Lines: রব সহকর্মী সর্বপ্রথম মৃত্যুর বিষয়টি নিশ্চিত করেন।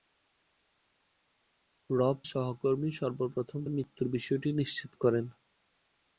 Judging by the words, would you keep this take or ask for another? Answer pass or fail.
pass